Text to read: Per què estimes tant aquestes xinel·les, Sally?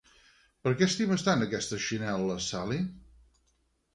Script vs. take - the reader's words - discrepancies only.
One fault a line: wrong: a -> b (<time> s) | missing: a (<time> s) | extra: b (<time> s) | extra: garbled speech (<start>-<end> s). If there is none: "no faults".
no faults